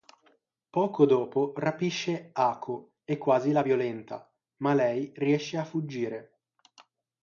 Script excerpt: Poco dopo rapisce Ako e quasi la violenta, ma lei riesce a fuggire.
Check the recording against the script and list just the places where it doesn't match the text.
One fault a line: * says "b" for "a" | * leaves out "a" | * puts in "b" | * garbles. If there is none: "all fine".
all fine